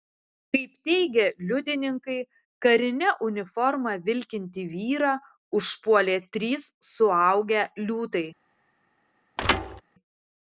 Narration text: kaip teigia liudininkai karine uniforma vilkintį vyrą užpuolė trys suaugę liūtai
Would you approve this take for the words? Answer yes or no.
yes